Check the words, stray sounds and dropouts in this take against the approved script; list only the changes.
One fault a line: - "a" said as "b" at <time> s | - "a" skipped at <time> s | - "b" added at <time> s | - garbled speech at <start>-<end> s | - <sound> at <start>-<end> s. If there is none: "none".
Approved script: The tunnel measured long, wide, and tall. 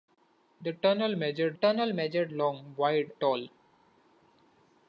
- "tunnel measured" added at 1.5 s
- "and" skipped at 3.1 s